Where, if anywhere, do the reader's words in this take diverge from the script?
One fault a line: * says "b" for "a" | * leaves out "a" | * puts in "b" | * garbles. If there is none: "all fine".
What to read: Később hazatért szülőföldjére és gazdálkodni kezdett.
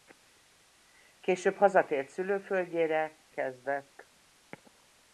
* leaves out "és gazdálkodni"